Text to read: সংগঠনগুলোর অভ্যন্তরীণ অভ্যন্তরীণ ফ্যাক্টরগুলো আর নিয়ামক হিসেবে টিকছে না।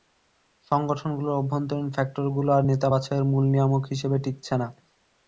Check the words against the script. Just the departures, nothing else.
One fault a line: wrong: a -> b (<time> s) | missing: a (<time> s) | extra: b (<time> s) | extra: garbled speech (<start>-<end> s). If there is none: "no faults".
missing: অভ্যন্তরীণ (1.9 s)
extra: নেতা বাছাইয়ের মূল (2.7 s)